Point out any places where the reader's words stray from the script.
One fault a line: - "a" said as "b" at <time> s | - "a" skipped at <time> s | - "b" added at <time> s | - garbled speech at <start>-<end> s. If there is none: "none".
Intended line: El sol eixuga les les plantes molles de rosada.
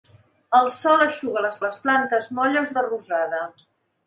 none